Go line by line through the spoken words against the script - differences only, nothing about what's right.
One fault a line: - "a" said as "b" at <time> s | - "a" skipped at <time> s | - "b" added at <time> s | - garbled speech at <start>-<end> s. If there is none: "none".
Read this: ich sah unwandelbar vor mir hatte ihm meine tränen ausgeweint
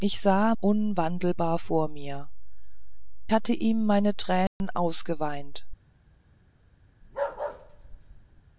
none